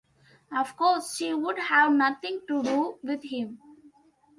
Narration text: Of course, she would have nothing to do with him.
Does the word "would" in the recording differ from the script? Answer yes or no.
no